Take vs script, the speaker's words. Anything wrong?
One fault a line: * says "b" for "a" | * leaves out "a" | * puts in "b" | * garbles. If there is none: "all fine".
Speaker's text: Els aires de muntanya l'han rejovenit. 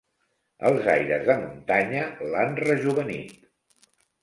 all fine